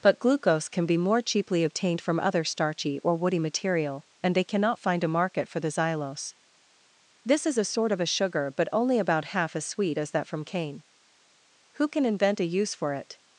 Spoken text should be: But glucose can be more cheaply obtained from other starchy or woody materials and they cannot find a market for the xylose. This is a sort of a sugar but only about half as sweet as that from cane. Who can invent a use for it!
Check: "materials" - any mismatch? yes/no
yes